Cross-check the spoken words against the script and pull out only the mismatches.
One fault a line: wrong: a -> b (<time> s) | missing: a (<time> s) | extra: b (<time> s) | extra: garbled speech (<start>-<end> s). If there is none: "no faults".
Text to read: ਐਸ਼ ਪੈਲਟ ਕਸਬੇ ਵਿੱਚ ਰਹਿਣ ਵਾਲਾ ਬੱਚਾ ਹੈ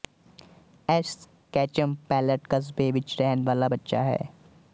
extra: ਕੈਚਮ (1.5 s)